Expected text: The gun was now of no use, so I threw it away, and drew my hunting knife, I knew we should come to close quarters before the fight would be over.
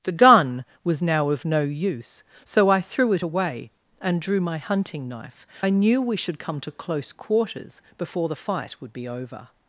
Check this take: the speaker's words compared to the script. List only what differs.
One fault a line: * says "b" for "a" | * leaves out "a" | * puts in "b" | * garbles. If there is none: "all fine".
all fine